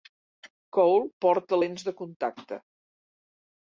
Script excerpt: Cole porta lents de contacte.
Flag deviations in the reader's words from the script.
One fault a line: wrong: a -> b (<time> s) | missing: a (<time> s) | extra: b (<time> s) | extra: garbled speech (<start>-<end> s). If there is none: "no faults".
no faults